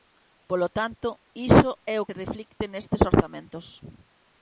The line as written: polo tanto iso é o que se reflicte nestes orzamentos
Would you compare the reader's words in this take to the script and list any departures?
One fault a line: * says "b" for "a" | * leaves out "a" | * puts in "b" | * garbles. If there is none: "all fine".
* leaves out "que"